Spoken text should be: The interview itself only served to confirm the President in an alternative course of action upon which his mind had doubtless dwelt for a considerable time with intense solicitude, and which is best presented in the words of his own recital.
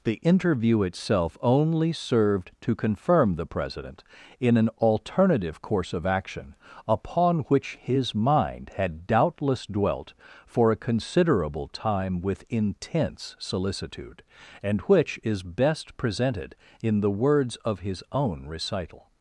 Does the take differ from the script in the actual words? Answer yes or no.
no